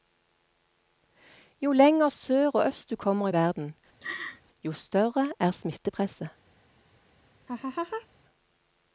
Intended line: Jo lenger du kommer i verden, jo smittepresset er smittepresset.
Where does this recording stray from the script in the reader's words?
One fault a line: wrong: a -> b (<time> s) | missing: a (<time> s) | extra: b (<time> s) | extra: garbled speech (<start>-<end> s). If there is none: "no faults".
extra: sør og øst (2.1 s)
wrong: smittepresset -> større (4.7 s)